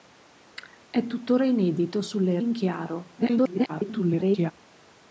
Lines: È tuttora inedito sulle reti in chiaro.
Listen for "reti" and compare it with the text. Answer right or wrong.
wrong